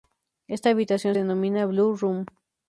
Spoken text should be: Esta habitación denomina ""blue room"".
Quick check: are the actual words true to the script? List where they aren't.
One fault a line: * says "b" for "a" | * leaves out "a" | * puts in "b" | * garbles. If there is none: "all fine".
all fine